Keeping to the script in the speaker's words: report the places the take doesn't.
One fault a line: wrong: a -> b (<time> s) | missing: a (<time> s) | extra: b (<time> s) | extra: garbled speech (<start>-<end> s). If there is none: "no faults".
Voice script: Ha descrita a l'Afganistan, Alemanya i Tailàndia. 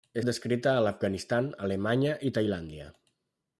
no faults